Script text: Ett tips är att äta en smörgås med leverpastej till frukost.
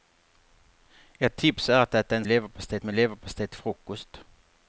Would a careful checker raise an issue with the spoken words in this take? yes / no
yes